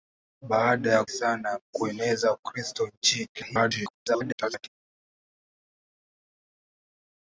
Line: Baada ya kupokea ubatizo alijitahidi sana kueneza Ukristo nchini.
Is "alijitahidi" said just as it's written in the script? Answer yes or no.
no